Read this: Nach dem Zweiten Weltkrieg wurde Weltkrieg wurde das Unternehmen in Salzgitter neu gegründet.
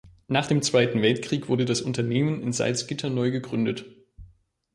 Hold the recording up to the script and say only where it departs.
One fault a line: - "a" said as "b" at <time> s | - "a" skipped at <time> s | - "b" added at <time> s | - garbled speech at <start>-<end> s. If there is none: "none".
- "Weltkrieg wurde" skipped at 1.6 s